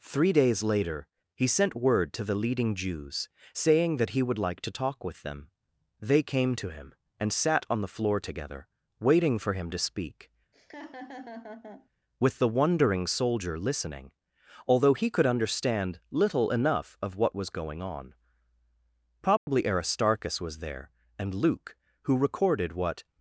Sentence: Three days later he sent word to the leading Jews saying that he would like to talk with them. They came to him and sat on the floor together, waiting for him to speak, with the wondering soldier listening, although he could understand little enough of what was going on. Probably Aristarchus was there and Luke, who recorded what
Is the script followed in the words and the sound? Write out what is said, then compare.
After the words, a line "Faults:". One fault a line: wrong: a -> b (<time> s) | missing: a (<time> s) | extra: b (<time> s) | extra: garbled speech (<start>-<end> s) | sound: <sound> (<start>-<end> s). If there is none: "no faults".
Three days later he sent word to the leading Jews saying that he would like to talk with them. They came to him and sat on the floor together, waiting for him to speak, with the wondering soldier listening, although he could understand little enough of what was going on. Probably Aristarchus was there and Luke, who recorded what
Faults:
sound: laugh (10.5-11.9 s)
sound: dropout (19.4-19.5 s)